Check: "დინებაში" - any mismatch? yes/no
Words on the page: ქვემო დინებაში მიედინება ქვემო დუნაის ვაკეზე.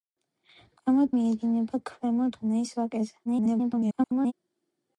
yes